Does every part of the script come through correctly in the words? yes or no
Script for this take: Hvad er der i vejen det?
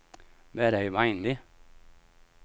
yes